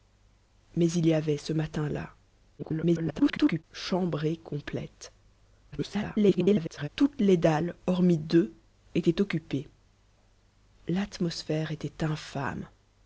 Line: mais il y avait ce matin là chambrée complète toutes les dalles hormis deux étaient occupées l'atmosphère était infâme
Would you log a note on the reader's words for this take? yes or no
yes